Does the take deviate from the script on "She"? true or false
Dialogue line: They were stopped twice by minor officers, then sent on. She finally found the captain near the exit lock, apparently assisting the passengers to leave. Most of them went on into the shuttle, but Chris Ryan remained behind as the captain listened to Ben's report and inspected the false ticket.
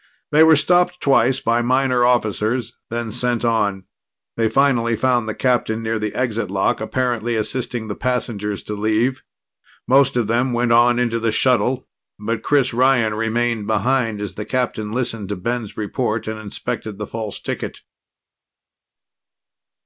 true